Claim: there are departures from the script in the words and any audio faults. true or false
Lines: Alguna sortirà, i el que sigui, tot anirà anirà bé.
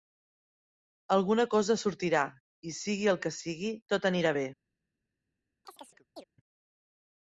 true